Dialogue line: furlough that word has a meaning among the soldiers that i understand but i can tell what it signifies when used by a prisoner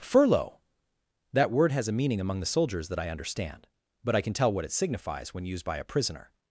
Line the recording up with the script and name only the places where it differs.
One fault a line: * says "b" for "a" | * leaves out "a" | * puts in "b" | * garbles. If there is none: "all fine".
all fine